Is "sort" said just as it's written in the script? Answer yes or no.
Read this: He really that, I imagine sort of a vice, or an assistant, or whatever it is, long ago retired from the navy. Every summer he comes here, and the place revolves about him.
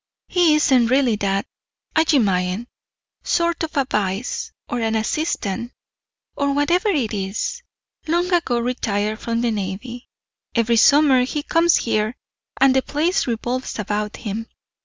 yes